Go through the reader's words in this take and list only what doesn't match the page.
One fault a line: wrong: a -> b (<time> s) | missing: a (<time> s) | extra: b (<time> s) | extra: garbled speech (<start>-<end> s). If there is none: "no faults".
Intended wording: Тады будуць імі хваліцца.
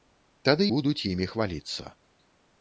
no faults